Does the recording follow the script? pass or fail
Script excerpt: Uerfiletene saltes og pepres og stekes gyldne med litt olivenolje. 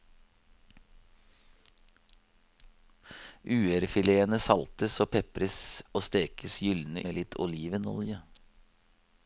pass